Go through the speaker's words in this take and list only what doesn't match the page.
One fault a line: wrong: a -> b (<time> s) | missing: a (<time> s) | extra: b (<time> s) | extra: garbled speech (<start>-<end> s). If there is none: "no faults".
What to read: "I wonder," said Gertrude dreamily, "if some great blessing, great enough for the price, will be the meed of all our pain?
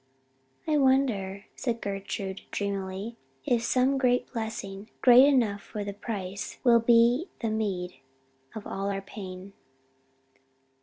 no faults